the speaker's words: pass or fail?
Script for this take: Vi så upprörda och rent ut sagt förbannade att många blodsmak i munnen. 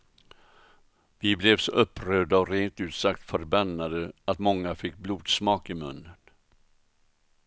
fail